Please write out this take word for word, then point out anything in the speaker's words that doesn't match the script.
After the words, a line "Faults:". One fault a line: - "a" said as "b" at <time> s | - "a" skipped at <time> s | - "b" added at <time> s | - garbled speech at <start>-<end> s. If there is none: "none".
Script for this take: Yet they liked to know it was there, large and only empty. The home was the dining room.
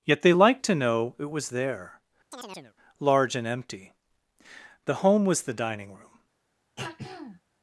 Yet they liked to know it was there, large and empty. The home was the dining room.
Faults:
- "only" skipped at 3.5 s